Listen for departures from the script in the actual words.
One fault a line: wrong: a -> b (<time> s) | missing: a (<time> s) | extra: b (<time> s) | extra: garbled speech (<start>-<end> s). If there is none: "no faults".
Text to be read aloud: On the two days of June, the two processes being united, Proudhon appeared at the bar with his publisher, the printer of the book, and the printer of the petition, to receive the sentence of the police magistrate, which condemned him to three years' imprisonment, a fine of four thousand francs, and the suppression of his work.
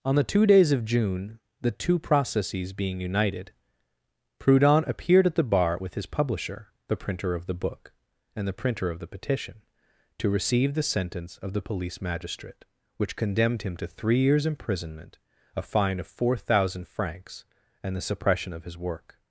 no faults